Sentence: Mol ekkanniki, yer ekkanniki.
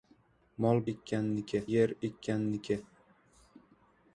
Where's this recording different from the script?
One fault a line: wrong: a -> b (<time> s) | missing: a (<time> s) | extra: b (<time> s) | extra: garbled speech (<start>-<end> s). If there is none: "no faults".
no faults